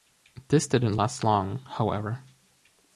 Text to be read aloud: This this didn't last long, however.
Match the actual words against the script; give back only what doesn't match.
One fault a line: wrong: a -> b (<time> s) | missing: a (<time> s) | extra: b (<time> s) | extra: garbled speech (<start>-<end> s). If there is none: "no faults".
missing: this (0.7 s)